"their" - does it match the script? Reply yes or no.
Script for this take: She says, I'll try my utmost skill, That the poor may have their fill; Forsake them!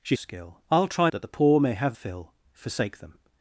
no